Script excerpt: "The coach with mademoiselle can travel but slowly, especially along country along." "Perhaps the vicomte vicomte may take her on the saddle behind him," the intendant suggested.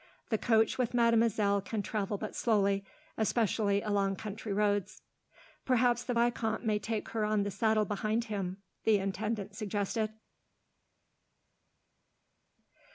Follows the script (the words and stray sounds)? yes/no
no